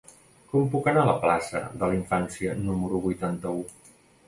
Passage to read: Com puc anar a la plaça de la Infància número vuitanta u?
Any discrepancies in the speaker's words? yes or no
no